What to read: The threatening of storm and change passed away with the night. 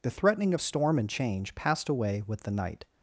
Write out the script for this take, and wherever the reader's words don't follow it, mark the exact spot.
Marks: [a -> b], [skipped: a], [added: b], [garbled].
The threatening of storm and change passed away with the night.